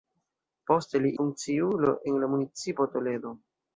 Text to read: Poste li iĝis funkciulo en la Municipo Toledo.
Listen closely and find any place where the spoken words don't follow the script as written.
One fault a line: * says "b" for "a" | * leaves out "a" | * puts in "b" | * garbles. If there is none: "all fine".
* leaves out "iĝis"